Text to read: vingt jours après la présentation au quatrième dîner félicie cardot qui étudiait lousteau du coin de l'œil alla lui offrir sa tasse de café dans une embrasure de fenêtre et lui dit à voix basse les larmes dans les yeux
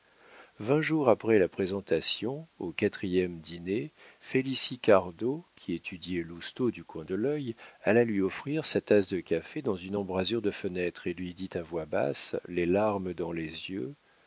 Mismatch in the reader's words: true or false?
false